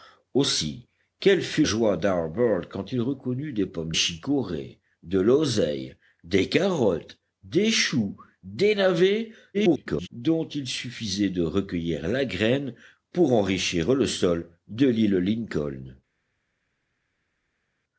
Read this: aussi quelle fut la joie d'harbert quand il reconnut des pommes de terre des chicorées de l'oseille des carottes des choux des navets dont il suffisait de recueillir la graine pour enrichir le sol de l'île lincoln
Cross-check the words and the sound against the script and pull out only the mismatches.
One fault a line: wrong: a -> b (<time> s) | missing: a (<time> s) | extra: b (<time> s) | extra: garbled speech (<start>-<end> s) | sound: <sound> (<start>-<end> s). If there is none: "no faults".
missing: la (1.6 s)
missing: de terre des (3.9 s)
extra: garbled speech (9.5-10.1 s)